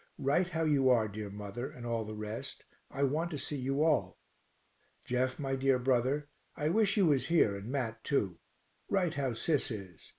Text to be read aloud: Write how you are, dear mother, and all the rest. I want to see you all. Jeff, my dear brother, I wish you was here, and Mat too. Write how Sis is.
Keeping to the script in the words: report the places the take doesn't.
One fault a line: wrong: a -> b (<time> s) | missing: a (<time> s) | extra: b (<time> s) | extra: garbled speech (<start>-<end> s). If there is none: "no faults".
no faults